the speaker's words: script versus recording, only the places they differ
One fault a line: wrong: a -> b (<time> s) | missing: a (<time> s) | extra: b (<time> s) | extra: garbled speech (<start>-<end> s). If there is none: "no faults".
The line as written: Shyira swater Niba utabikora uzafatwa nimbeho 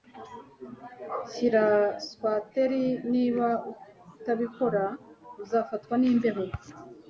no faults